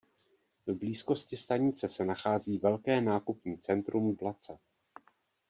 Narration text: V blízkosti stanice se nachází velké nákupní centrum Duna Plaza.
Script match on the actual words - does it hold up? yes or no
no